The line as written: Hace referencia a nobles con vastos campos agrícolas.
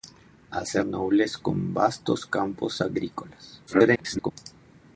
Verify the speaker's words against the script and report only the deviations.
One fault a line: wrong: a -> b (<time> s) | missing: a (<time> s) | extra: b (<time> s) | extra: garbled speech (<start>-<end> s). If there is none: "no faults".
missing: referencia (0.8 s)
extra: garbled speech (3.7-4.3 s)